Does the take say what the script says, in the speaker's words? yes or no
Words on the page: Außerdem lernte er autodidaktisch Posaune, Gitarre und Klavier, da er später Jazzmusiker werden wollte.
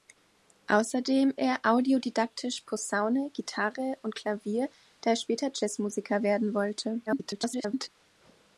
no